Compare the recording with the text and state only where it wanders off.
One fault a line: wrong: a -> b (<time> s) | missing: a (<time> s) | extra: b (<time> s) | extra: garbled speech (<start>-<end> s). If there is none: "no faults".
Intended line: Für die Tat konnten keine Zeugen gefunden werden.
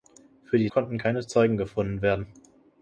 missing: Tat (0.7 s)